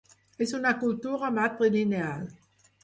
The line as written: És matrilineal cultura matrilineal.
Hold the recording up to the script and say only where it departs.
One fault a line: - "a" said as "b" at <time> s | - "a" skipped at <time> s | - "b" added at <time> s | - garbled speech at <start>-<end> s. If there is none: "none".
- "matrilineal" said as "una" at 0.6 s